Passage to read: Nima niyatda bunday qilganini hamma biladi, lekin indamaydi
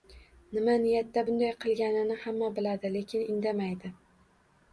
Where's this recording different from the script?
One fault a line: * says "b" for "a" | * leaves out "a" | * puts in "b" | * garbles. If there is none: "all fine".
all fine